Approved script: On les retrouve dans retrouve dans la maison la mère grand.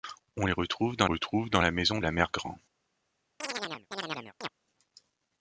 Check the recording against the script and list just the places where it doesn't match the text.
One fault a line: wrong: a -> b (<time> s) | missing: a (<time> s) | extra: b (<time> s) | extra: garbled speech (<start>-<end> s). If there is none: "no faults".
no faults